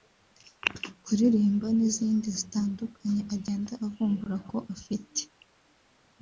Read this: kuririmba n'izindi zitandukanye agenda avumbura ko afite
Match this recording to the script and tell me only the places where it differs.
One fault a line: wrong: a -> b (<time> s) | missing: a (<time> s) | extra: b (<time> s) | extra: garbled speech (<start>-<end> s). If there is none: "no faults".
no faults